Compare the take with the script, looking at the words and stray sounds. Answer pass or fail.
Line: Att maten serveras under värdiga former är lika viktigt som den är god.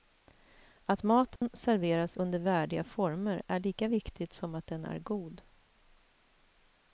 fail